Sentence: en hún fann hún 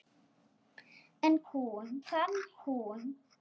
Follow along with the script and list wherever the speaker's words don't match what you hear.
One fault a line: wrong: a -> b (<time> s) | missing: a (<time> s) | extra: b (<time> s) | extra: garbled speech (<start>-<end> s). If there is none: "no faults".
no faults